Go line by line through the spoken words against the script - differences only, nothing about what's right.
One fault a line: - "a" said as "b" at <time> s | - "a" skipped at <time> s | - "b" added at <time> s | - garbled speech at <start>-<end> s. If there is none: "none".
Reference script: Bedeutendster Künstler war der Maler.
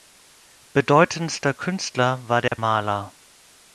none